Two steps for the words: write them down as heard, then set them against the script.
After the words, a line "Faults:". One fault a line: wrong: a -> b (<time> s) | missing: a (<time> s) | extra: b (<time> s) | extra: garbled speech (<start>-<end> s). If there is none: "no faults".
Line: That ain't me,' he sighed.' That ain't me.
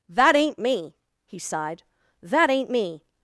That ain't me,' he sighed.' That ain't me.
Faults:
no faults